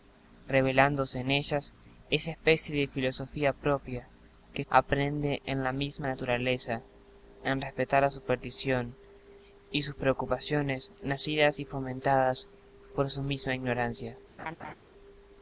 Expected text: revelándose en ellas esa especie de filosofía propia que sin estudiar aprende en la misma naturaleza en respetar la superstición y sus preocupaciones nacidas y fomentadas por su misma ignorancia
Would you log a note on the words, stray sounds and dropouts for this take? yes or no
yes